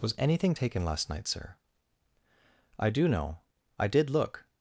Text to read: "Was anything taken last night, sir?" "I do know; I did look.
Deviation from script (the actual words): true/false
false